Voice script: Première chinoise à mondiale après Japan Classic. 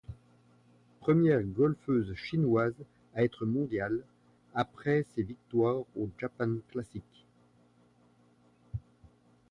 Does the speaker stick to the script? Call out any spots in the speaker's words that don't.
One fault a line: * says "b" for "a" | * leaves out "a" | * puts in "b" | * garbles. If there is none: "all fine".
* puts in "golfeuse"
* puts in "être"
* puts in "ses victoires au"